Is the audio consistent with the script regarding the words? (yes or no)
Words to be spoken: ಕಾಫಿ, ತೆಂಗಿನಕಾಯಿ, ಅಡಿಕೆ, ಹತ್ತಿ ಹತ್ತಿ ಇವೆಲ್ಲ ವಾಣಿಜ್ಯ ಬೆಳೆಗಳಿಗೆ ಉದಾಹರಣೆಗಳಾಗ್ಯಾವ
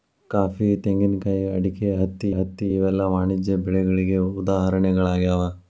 yes